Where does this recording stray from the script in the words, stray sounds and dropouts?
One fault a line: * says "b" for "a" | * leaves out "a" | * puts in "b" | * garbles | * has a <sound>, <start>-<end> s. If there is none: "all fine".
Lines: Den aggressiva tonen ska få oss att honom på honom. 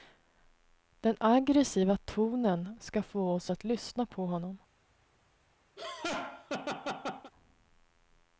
* says "lyssna" for "honom"
* has a laugh, 5.8-7.3 s